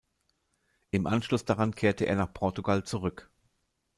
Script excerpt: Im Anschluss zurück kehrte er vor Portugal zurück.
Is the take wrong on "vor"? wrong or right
wrong